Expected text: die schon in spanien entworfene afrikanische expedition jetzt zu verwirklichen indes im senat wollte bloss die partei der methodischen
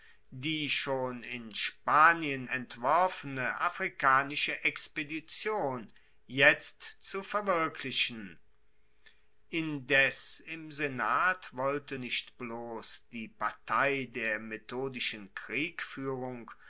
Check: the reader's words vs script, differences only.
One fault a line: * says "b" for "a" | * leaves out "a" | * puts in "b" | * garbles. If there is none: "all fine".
* puts in "nicht"